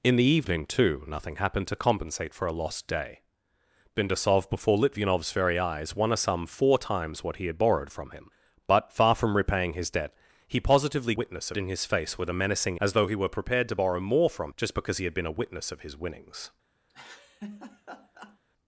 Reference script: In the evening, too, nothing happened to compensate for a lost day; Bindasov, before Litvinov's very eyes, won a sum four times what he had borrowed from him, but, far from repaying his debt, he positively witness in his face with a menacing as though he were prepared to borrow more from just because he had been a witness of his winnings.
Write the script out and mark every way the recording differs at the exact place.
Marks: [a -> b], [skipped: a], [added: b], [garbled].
In the evening, too, nothing happened to compensate for a lost day; Bindasov, before Litvinov's very eyes, won a sum four times what he had borrowed from him, but, far from repaying his debt, he positively witness in his face with a menacing as though he were prepared to borrow more from just because he had been a witness of his winnings.